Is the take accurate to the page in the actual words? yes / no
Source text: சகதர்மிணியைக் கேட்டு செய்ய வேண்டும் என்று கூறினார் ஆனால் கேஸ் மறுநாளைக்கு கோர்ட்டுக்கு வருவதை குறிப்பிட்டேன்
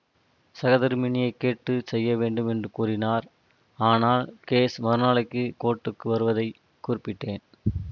yes